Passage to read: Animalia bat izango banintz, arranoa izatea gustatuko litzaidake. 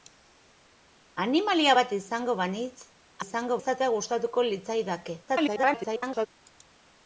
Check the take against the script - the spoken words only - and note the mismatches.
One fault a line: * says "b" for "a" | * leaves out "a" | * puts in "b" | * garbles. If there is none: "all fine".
* says "izango" for "arranoa"
* garbles